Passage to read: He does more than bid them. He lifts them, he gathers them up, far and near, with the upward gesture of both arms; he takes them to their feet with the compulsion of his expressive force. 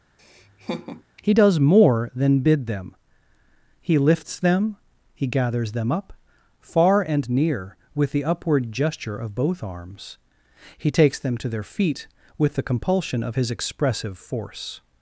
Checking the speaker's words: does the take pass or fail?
pass